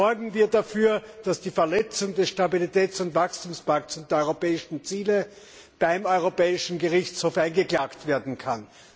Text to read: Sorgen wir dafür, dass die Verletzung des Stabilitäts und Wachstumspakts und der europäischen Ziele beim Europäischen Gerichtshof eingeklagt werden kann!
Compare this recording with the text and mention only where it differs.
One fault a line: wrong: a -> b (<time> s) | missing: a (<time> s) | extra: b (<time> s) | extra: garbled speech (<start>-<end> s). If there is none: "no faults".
no faults